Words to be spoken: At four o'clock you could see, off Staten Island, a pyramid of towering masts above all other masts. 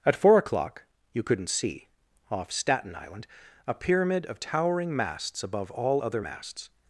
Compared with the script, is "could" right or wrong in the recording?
wrong